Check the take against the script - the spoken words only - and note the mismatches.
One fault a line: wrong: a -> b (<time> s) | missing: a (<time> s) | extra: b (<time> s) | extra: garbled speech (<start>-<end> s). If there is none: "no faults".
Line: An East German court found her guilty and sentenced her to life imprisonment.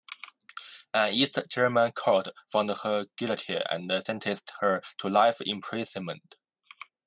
no faults